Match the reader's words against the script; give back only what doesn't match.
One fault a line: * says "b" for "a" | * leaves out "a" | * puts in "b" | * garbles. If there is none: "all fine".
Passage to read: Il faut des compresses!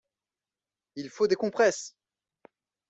all fine